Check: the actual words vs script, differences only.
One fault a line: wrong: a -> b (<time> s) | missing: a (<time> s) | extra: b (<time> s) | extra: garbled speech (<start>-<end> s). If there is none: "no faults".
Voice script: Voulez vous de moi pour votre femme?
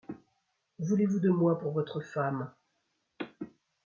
no faults